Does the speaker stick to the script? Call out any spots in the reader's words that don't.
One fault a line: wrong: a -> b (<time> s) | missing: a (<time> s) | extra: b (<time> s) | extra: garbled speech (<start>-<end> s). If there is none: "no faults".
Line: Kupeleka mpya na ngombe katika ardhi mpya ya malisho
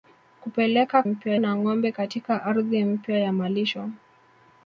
no faults